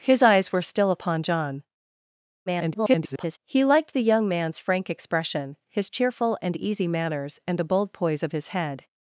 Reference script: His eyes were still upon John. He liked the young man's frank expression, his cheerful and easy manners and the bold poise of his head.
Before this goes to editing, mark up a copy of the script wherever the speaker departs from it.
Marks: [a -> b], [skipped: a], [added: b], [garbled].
His eyes were still upon John. [garbled] He liked the young man's frank expression, his cheerful and easy manners and the bold poise of his head.